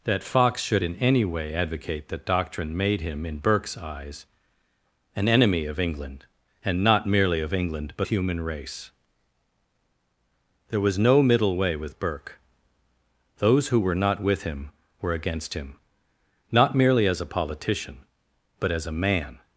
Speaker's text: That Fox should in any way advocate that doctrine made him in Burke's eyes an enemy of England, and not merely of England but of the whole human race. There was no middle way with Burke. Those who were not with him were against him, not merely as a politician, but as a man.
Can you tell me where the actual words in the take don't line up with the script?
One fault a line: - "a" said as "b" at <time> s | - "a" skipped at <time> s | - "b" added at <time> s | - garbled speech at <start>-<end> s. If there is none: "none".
- "of the whole" skipped at 8.1 s